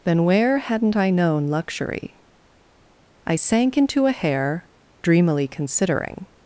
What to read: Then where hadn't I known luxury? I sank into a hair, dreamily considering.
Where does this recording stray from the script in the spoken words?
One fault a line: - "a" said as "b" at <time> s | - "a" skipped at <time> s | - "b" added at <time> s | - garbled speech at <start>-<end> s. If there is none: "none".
none